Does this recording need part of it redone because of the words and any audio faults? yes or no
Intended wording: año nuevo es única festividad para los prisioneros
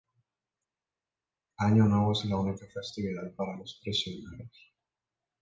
yes